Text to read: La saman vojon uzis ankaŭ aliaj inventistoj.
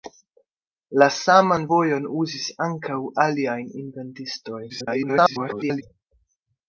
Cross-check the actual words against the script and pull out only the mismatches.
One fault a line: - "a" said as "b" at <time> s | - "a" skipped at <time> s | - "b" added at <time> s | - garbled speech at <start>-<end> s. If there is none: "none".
- garbled speech at 4.7-5.8 s